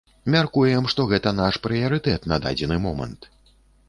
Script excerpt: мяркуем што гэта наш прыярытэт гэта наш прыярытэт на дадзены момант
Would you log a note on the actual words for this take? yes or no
yes